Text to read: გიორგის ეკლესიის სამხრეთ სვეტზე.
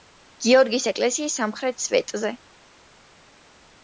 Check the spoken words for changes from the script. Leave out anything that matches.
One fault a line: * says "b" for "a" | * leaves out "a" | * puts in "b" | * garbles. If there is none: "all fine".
all fine